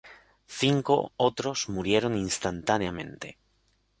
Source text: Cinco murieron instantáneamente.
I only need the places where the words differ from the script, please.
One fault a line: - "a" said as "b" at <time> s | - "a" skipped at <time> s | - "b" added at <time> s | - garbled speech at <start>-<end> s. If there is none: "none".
- "otros" added at 1.2 s